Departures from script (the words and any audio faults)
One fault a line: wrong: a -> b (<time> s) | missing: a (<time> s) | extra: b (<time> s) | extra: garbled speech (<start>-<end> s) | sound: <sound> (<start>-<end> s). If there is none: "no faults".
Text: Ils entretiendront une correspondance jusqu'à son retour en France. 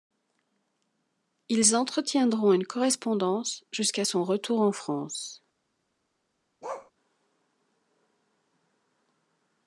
sound: bark (6.6-6.9 s)